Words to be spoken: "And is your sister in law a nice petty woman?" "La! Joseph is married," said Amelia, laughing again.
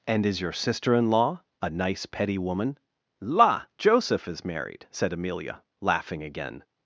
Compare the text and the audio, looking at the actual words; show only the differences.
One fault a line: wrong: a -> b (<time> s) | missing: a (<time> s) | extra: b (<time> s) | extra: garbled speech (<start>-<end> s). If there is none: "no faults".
no faults